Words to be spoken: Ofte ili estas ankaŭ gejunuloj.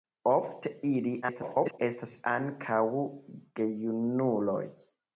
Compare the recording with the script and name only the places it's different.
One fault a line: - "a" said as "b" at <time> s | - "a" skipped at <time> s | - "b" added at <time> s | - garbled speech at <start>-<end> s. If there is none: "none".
- garbled speech at 1.2-1.8 s